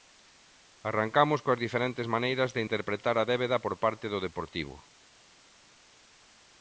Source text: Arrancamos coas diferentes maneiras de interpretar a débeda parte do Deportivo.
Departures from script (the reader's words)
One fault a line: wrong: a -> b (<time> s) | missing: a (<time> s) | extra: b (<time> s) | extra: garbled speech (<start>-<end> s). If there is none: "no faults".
extra: por (3.6 s)